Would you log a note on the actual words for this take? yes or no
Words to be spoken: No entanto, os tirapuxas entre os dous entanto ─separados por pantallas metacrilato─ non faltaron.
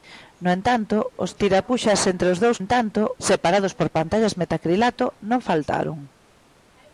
no